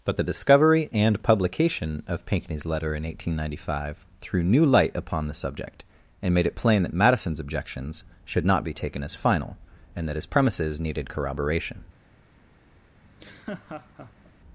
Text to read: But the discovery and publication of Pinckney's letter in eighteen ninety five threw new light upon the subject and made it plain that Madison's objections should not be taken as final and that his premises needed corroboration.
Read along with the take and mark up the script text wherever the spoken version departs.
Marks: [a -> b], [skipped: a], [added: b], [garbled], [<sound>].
But the discovery and publication of Pinckney's letter in eighteen ninety five threw new light upon the subject and made it plain that Madison's objections should not be taken as final and that his premises needed corroboration. [laugh]